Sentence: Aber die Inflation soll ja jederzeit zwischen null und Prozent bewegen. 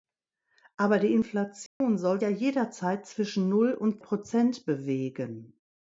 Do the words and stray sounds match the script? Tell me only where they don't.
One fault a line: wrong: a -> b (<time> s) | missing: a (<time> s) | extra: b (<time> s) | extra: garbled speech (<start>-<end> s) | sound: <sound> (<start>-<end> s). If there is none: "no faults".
sound: dropout (1.7-1.8 s)